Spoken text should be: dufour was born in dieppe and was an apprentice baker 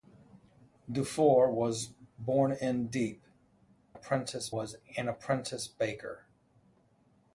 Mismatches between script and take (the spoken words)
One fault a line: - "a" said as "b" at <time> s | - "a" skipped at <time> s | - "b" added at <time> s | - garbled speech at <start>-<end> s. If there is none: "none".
- "and" said as "apprentice" at 3.9 s